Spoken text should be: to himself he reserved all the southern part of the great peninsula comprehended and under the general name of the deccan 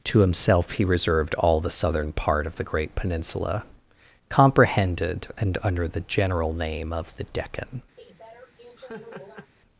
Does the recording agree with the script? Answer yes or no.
yes